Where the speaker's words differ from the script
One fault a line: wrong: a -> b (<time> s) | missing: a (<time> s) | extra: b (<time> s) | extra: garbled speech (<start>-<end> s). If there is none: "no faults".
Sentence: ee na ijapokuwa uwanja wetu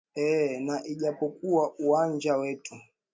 no faults